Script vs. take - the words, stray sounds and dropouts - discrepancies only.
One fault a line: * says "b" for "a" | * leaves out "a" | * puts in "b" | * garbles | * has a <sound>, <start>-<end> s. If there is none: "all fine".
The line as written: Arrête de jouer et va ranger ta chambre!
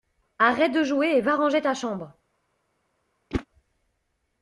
* has a whoosh, 3.3-3.5 s